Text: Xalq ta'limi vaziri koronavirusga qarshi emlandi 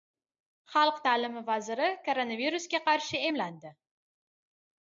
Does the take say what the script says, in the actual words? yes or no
yes